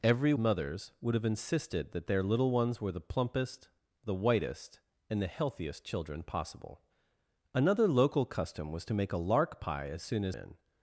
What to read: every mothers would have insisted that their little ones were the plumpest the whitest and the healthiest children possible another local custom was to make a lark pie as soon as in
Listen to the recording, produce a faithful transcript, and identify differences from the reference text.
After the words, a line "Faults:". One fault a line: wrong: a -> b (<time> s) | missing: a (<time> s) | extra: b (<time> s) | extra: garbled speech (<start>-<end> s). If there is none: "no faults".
every mothers would have insisted that their little ones were the plumpest the whitest and the healthiest children possible another local custom was to make a lark pie as soon as in
Faults:
no faults